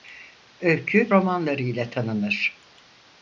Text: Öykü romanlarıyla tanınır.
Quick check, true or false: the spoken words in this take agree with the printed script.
true